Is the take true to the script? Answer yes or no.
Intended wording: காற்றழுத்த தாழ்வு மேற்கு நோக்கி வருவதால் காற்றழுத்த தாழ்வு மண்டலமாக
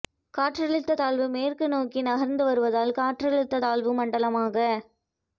no